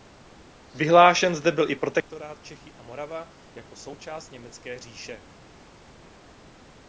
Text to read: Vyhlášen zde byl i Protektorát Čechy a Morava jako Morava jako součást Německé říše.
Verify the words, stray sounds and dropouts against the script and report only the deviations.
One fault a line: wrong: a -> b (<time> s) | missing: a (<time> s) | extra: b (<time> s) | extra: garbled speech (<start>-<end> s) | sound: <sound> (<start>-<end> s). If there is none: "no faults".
missing: Morava jako (3.8 s)